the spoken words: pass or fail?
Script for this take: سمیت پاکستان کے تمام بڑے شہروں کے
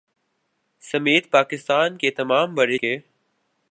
fail